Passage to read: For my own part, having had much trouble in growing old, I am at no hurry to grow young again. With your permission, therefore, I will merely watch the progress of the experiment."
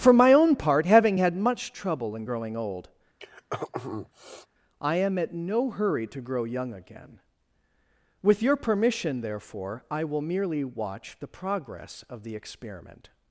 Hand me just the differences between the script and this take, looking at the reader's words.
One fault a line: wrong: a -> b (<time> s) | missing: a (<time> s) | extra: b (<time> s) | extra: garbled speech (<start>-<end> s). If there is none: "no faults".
no faults